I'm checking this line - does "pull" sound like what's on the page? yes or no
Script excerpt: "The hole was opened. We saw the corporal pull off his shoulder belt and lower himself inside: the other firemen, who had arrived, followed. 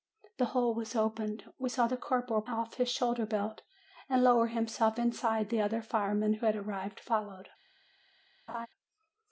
no